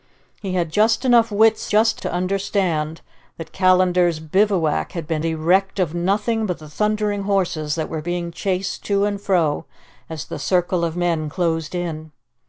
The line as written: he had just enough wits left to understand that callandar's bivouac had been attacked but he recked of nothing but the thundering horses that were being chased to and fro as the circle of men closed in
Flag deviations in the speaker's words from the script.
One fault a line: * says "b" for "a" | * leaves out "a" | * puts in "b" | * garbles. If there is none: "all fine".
* says "just" for "left"
* leaves out "attacked but"